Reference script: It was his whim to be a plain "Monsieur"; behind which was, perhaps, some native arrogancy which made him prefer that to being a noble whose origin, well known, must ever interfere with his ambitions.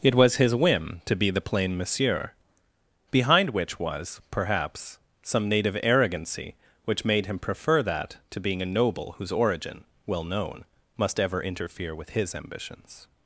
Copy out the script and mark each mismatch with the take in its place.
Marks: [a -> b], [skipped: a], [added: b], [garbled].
It was his whim to be [a -> the] plain "Monsieur"; behind which was, perhaps, some native arrogancy which made him prefer that to being a noble whose origin, well known, must ever interfere with his ambitions.